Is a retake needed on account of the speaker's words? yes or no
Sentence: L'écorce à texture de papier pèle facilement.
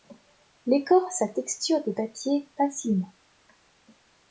yes